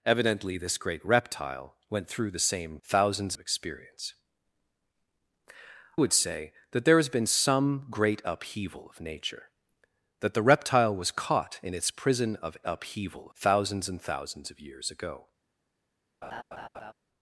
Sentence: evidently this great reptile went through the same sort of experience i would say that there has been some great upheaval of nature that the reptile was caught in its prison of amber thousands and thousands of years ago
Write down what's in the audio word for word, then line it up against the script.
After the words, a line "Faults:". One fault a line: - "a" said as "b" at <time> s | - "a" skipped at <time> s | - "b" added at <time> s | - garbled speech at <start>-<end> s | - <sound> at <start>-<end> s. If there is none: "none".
evidently this great reptile went through the same thousands of experience would say that there has been some great upheaval of nature that the reptile was caught in its prison of upheaval thousands and thousands of years ago
Faults:
- "sort" said as "thousands" at 2.8 s
- "i" skipped at 4.1 s
- "amber" said as "upheaval" at 12.7 s
- laugh at 16.2-16.9 s